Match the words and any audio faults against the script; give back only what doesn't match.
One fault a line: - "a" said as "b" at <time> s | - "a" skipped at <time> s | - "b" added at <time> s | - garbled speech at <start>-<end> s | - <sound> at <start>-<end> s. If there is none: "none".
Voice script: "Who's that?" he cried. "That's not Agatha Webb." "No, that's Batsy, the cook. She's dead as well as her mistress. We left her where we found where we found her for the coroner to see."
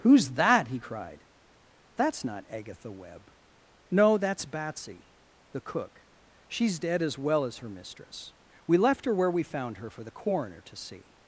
- "where we found" skipped at 9.8 s